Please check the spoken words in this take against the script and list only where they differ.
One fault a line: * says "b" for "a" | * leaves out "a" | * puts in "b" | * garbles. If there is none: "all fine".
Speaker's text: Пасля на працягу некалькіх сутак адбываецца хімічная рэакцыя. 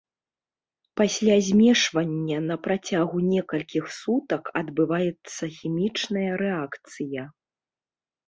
* puts in "змешвання"